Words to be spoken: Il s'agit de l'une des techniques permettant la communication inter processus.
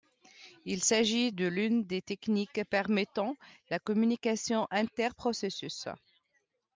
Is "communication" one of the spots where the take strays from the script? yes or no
no